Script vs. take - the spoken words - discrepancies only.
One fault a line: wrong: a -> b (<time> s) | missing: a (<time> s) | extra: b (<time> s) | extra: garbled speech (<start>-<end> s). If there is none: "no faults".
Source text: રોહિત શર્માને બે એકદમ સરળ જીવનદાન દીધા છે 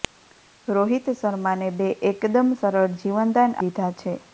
no faults